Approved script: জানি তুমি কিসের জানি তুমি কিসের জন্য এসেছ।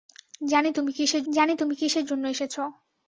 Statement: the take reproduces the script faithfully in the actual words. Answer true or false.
true